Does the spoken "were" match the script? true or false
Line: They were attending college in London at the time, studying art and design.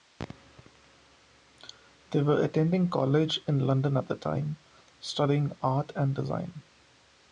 true